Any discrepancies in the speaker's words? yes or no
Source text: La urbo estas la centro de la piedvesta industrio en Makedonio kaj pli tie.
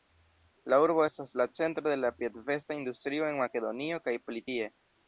no